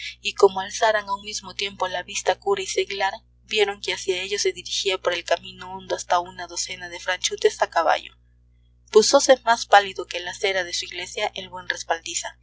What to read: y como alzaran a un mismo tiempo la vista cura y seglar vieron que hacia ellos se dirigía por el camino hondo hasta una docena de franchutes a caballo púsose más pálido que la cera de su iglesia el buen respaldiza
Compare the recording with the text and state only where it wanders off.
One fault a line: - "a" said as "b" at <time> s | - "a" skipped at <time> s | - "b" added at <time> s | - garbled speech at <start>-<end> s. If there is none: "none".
none